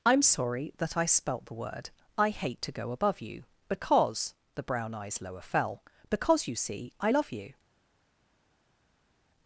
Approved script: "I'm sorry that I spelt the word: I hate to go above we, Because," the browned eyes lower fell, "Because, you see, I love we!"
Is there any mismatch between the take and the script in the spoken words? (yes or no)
yes